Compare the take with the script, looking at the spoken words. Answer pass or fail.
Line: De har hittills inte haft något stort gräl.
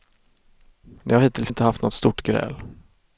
pass